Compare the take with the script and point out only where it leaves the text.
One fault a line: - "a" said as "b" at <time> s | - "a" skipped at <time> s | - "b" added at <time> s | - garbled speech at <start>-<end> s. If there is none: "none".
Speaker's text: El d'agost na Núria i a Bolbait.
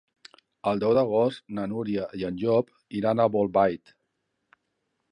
- "deu" added at 0.8 s
- "en Llop iran" added at 2.3 s